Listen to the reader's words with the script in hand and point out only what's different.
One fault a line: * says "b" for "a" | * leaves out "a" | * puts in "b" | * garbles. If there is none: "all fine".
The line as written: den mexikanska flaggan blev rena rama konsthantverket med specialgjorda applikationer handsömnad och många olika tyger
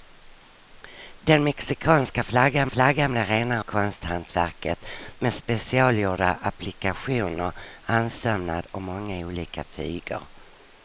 * puts in "flaggan"
* leaves out "rama"